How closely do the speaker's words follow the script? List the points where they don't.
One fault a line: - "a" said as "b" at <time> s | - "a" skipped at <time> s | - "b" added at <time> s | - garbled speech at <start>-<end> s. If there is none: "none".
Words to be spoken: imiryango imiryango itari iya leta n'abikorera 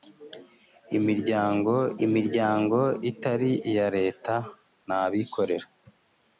none